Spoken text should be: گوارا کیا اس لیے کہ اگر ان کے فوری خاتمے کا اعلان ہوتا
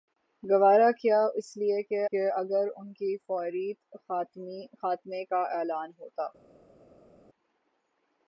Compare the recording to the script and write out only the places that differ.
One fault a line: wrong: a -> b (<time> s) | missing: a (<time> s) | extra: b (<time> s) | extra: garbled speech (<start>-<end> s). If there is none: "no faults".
extra: کہ (2.0 s)